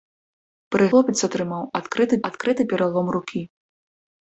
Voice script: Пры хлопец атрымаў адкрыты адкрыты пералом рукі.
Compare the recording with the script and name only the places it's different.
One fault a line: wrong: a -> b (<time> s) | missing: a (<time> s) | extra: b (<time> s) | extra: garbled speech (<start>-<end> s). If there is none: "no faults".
no faults